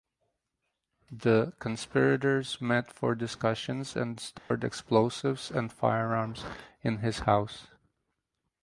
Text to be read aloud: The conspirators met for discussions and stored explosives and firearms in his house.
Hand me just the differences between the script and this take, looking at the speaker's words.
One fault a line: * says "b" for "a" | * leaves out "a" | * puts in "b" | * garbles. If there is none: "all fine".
all fine